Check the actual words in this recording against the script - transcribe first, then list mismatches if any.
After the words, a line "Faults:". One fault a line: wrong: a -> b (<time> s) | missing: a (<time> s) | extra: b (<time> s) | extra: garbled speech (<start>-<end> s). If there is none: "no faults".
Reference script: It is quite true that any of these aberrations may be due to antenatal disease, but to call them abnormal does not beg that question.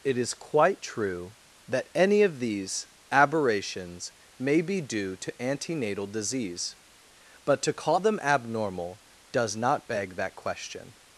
It is quite true that any of these aberrations may be due to antenatal disease, but to call them abnormal does not beg that question.
Faults:
no faults